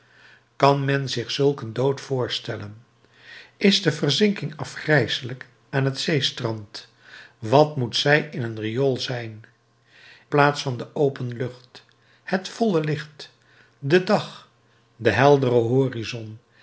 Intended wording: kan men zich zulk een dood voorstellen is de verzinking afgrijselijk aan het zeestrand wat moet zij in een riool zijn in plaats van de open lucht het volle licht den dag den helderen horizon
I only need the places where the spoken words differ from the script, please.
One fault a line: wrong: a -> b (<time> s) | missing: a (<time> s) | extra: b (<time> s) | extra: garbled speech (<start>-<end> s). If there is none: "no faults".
missing: in (9.4 s)